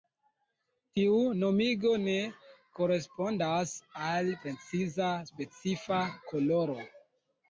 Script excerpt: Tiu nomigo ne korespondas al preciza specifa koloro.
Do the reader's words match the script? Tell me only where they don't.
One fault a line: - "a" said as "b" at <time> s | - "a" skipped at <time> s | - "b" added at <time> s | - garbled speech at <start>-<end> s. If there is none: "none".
none